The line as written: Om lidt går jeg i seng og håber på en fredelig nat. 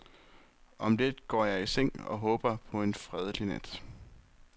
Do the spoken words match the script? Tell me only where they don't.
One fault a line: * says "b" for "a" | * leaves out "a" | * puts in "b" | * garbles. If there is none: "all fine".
all fine